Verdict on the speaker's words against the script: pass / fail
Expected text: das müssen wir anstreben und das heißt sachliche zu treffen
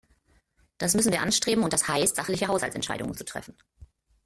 fail